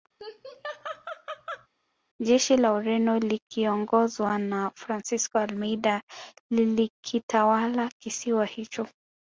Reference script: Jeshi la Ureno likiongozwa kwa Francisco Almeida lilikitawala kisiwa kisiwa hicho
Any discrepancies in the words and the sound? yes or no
yes